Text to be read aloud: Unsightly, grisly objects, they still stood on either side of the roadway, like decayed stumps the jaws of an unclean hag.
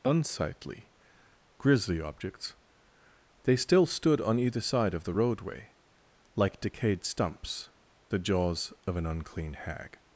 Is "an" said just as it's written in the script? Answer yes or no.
yes